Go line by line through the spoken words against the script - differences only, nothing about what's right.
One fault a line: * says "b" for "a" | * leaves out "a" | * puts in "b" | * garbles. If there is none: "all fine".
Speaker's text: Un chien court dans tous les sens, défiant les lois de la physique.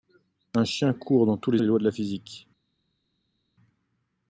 * leaves out "sens défiant"